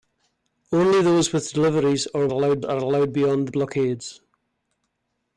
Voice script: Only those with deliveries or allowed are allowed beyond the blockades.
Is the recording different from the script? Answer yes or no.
no